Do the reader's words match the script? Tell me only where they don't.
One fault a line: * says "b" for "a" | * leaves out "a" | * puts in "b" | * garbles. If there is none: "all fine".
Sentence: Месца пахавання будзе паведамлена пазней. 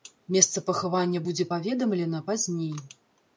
all fine